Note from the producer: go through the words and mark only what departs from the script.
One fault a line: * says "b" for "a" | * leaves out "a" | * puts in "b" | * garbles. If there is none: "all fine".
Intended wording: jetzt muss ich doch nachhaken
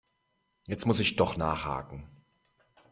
all fine